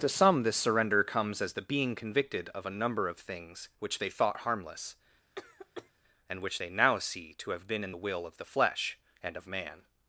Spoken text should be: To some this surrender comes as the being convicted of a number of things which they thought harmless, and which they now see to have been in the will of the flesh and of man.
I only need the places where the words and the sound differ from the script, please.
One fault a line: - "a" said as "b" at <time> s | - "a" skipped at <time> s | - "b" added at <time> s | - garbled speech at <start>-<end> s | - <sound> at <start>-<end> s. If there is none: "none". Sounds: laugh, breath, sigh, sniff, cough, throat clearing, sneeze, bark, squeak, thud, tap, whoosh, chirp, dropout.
- cough at 5.4-5.9 s